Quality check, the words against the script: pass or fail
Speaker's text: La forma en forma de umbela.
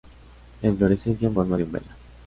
fail